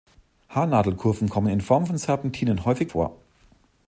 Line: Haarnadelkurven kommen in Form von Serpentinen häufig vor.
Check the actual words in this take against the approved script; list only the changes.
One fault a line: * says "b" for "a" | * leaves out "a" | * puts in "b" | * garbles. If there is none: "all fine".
all fine